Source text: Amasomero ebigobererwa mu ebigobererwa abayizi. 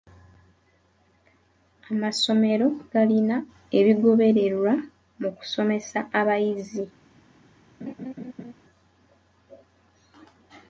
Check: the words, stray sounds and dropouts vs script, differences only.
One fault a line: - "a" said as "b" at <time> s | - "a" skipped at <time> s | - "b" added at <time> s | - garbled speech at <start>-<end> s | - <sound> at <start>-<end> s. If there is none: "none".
- "galina" added at 2.9 s
- "ebigobererwa" said as "kusomesa" at 5.4 s
- laugh at 7.8-8.5 s